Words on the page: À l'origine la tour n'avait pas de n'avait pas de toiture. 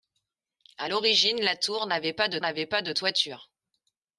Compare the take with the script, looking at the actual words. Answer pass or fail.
pass